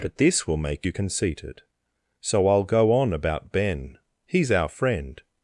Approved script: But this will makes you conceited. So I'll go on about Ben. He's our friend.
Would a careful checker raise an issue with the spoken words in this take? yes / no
yes